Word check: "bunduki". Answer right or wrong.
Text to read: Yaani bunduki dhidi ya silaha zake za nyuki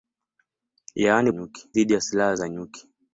wrong